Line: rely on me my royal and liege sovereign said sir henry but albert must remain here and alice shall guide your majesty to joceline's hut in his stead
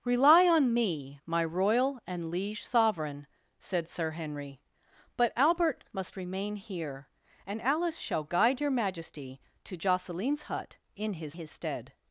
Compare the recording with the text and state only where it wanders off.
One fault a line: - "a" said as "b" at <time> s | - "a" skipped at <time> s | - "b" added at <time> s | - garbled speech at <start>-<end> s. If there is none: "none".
- "his" added at 11.3 s